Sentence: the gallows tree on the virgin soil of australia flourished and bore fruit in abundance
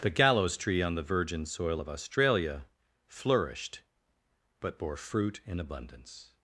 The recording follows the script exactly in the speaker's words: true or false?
false